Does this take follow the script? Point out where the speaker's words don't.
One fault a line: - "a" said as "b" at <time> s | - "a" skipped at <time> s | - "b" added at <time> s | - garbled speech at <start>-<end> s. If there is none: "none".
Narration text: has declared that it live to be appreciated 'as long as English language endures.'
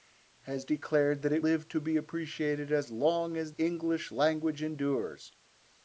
none